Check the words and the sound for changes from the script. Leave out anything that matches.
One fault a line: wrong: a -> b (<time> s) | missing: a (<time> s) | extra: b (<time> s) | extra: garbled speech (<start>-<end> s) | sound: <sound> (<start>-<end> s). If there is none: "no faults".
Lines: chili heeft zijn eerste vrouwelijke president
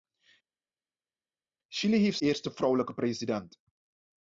missing: zijn (2.2 s)